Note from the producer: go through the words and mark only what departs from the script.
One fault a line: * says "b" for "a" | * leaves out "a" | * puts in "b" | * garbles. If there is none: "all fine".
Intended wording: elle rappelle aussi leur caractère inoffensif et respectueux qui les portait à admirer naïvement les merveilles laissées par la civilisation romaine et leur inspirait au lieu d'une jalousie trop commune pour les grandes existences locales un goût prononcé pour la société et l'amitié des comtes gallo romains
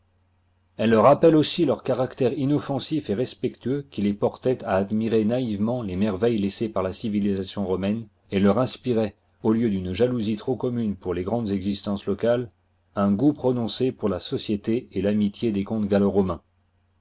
all fine